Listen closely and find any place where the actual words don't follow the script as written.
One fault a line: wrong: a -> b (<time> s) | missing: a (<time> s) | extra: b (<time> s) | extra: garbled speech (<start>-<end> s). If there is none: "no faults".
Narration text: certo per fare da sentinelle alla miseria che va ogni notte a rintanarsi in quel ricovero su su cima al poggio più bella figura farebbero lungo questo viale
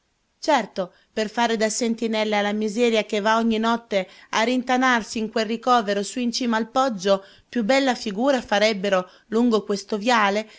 wrong: su -> in (6.2 s)